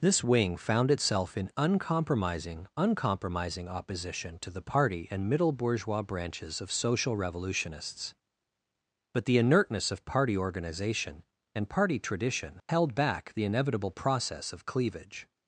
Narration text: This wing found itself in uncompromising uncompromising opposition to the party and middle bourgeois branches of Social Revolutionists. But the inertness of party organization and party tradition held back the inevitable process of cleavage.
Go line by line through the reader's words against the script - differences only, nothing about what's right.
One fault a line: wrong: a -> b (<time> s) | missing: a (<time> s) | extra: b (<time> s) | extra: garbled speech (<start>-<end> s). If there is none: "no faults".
no faults